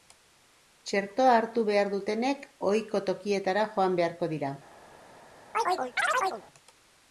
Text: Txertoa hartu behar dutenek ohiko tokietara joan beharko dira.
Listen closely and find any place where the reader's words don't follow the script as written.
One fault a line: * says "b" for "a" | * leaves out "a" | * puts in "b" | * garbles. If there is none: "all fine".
all fine